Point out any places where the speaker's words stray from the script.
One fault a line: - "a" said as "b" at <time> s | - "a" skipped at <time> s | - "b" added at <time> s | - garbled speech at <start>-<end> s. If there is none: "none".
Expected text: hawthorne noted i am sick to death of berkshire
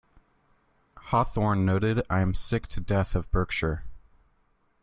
none